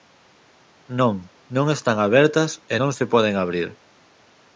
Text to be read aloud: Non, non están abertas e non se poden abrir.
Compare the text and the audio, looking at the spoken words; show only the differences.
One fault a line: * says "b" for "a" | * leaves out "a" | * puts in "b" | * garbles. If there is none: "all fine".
all fine